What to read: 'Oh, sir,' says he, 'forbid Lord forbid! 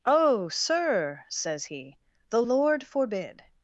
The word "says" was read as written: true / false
true